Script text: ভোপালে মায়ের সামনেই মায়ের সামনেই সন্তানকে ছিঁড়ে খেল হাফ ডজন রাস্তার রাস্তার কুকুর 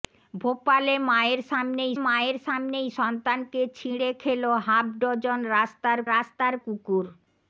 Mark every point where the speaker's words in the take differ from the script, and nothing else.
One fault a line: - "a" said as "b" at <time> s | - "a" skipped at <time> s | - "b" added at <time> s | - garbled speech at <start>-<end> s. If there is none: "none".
none